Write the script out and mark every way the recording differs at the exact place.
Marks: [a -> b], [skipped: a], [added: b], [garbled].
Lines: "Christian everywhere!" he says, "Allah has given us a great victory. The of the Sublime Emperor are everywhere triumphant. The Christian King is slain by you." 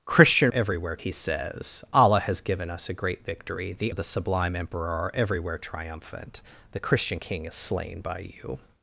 "Christian everywhere!" he says, "Allah has given us a great victory. The of the Sublime Emperor are everywhere triumphant. The Christian King is slain by you."